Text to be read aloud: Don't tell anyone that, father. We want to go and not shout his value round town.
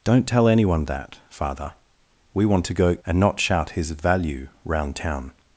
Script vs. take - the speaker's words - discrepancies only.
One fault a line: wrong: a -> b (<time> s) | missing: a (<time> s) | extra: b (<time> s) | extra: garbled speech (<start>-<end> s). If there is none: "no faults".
no faults